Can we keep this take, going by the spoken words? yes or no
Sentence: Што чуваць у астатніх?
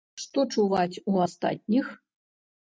yes